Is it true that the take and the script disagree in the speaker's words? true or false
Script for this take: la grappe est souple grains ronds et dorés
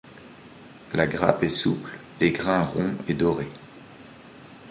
true